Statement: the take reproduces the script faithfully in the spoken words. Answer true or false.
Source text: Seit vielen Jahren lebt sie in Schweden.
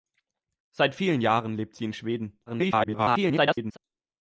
false